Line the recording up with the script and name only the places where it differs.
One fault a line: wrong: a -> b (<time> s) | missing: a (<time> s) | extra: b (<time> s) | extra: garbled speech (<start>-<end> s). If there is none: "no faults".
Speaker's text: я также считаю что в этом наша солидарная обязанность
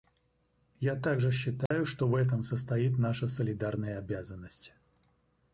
extra: состоит (2.4 s)